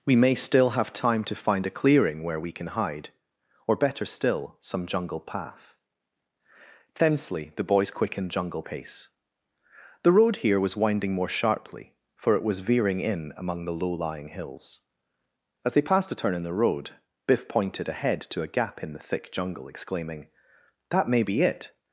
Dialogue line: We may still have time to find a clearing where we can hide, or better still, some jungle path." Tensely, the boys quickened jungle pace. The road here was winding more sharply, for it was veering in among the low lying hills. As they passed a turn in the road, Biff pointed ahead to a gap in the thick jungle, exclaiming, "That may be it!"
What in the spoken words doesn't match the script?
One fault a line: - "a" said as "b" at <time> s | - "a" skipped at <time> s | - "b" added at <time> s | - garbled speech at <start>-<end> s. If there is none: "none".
none